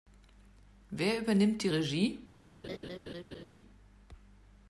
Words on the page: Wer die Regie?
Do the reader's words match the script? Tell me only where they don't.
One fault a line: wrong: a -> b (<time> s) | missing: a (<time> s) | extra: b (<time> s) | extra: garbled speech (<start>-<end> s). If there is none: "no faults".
extra: übernimmt (1.2 s)